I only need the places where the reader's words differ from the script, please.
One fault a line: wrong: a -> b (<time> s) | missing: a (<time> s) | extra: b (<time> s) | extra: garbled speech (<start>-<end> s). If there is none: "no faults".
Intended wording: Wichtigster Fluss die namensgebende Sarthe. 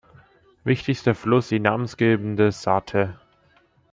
no faults